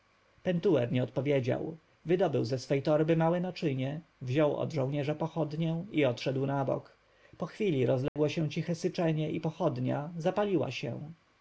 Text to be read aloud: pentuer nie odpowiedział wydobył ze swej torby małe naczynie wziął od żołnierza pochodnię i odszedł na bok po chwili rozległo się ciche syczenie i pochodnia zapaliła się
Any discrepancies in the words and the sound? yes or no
yes